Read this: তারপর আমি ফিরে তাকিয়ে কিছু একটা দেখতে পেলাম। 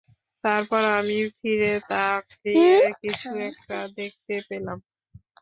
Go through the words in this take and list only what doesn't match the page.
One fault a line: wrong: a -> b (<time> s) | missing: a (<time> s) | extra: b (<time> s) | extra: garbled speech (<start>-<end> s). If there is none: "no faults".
no faults